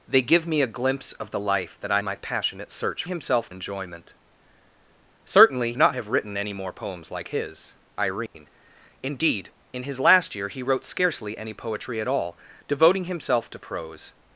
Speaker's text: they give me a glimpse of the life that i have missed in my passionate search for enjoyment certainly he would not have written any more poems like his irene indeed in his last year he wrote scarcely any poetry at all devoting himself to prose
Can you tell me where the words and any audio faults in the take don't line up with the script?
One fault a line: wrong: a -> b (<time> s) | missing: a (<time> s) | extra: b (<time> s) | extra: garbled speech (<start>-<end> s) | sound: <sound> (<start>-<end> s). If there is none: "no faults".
missing: have missed in (2.0 s)
wrong: for -> himself (3.1 s)
missing: he would (5.7 s)
sound: dropout (8.3-8.3 s)